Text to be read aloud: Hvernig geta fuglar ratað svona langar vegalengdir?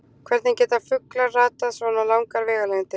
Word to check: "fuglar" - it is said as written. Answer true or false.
true